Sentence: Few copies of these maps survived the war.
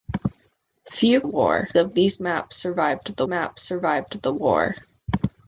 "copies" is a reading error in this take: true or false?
true